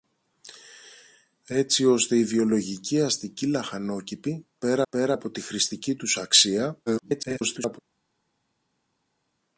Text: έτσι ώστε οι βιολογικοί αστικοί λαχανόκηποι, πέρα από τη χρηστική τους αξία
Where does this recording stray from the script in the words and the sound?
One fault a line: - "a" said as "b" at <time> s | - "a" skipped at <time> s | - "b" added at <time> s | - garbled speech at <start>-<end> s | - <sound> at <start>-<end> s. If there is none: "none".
- "πέρα" added at 4.9 s
- garbled speech at 6.9-7.8 s